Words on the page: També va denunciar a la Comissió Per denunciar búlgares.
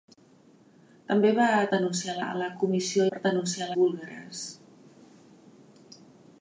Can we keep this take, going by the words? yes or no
yes